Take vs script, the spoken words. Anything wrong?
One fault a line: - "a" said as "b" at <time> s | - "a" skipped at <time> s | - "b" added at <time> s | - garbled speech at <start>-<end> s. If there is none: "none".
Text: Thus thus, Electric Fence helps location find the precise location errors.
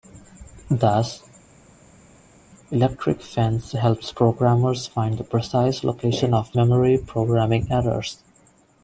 - "thus" skipped at 1.2 s
- "location" said as "programmers" at 4.1 s
- "of memory programming" added at 6.3 s